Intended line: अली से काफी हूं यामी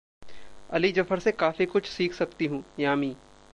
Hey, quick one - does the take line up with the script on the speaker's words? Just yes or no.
no